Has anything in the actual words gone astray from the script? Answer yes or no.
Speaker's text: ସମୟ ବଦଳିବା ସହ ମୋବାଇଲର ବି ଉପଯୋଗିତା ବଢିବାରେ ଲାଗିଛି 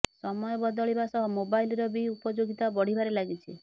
no